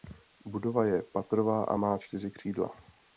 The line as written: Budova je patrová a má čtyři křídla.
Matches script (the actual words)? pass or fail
pass